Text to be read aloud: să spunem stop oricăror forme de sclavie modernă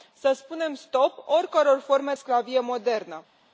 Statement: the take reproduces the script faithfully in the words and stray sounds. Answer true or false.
false